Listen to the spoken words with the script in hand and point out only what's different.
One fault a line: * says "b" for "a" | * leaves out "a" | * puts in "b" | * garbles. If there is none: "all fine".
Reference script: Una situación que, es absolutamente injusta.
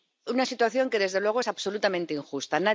* puts in "desde luego"